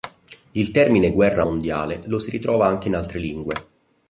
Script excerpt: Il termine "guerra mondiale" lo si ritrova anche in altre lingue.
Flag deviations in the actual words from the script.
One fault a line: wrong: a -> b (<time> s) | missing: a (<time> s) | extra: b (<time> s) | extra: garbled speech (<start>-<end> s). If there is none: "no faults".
no faults